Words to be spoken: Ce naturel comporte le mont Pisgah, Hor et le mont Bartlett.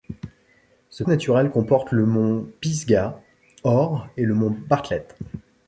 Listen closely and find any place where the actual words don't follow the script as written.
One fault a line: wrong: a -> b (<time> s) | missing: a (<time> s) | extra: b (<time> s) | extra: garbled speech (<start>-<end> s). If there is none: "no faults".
no faults